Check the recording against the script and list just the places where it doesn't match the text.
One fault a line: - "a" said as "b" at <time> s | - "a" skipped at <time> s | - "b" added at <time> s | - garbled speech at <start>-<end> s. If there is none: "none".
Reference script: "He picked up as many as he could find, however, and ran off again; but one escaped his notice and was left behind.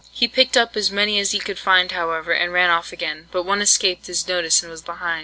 - "left" skipped at 4.9 s